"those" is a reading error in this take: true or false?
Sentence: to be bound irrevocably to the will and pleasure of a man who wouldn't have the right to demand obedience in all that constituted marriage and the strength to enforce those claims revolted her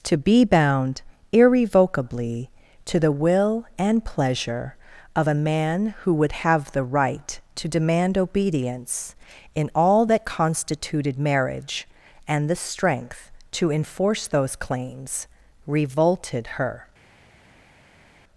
false